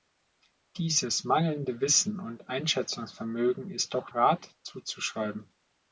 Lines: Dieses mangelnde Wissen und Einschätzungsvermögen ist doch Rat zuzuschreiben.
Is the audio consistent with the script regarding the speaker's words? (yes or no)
yes